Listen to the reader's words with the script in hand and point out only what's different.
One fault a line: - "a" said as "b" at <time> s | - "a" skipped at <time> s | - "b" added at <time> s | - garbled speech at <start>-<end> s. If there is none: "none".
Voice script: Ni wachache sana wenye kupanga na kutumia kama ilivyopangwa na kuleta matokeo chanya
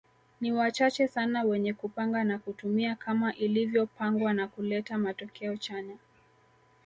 none